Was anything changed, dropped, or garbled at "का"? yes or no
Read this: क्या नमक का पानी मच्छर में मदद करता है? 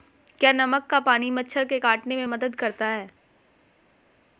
no